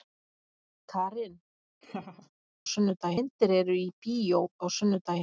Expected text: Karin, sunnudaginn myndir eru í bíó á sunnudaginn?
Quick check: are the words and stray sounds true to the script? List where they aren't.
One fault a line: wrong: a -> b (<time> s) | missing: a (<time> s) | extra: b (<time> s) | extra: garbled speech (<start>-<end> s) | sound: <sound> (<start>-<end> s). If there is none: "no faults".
sound: laugh (1.8-2.3 s)